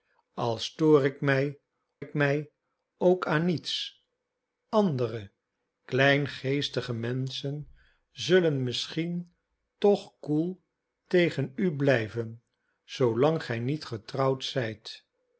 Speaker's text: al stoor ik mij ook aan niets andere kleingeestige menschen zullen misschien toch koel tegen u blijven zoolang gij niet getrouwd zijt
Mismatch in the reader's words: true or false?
true